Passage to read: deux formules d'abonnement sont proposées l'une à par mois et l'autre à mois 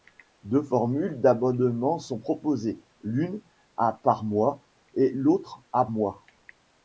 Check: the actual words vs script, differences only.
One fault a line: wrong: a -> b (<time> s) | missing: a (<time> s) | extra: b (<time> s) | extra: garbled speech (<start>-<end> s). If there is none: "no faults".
no faults